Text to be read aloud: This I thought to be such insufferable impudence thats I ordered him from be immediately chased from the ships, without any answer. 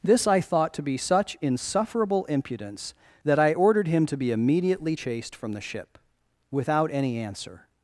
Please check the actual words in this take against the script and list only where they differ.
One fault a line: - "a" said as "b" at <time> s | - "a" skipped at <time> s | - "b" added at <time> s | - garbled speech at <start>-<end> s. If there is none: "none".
- "thats" said as "that" at 3.2 s
- "from" said as "to" at 4.1 s
- "ships" said as "ship" at 5.6 s